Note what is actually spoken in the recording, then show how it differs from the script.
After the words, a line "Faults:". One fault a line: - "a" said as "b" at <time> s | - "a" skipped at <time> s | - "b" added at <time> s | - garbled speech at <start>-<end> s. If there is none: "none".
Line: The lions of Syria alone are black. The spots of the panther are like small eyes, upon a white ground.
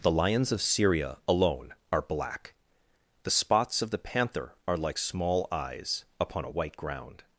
The lions of Syria alone are black. The spots of the panther are like small eyes, upon a white ground.
Faults:
none